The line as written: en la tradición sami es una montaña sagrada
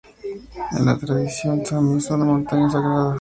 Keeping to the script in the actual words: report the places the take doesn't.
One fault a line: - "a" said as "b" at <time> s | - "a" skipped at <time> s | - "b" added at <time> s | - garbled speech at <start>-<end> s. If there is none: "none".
none